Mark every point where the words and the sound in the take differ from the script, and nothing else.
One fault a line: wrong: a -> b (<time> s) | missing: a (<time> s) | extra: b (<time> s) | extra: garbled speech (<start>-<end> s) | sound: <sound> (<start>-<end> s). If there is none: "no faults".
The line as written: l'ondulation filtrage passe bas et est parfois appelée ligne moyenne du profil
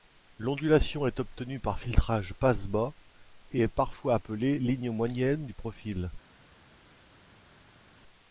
extra: est obtenue par (1.1 s)